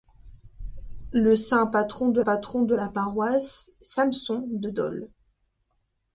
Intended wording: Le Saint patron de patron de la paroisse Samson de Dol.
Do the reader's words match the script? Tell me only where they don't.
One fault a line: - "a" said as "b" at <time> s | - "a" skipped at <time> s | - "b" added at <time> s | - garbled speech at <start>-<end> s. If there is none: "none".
none